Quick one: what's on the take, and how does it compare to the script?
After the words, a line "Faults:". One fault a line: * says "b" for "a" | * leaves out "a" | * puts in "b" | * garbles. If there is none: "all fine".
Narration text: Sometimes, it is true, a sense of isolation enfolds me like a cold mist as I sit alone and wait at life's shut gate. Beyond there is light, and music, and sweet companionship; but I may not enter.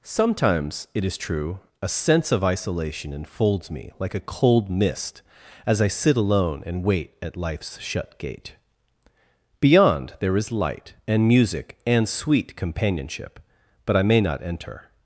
Sometimes, it is true, a sense of isolation enfolds me like a cold mist as I sit alone and wait at life's shut gate. Beyond there is light, and music, and sweet companionship; but I may not enter.
Faults:
all fine